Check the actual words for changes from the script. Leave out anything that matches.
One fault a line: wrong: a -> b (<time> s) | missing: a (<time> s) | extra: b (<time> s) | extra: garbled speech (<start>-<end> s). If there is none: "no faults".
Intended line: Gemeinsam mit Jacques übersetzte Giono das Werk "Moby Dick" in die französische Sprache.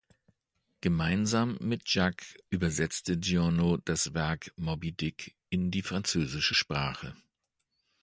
no faults